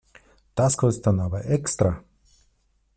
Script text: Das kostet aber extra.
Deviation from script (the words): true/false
true